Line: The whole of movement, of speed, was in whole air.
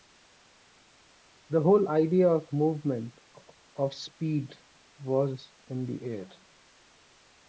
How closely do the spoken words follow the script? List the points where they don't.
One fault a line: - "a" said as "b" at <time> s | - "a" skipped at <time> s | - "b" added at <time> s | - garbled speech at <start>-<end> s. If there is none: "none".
- "idea" added at 1.9 s
- "whole" said as "the" at 5.9 s